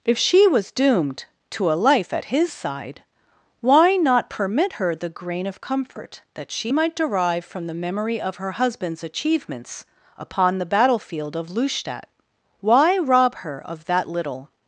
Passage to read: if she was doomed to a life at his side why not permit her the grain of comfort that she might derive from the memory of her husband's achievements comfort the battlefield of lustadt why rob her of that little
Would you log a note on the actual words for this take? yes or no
yes